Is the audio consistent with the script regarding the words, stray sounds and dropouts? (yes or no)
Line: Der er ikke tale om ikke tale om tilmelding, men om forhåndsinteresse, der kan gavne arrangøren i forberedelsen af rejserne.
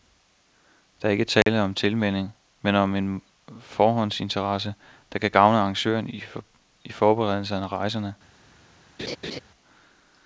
no